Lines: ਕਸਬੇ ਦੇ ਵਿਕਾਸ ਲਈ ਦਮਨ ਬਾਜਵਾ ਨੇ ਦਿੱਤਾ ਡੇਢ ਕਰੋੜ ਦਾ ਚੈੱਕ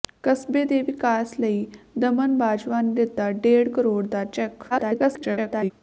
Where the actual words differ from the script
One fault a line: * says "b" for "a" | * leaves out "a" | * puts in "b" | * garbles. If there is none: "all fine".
* garbles